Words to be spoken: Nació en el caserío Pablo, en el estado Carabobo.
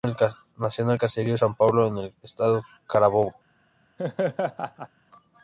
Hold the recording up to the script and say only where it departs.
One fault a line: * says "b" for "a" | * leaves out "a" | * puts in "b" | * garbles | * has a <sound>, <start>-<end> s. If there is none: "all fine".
* puts in "San"
* has a laugh, 4.0-4.9 s